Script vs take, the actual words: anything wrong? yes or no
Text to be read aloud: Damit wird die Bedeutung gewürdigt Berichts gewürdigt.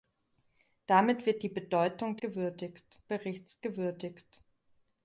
no